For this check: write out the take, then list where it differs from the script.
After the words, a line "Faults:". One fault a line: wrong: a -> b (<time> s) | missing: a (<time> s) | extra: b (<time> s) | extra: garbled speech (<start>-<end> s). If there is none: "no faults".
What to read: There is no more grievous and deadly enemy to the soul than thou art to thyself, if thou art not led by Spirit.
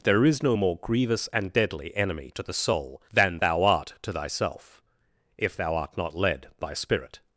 There is no more grievous and deadly enemy to the soul than thou art to thyself, if thou art not led by Spirit.
Faults:
no faults